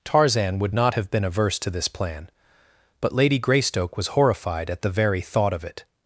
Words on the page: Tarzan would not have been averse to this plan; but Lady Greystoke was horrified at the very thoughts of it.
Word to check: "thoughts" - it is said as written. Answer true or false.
false